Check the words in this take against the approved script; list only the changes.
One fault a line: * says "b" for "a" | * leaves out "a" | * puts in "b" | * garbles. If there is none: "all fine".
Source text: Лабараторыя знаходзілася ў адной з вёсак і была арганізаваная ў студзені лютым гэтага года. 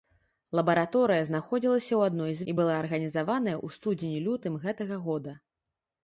* leaves out "вёсак"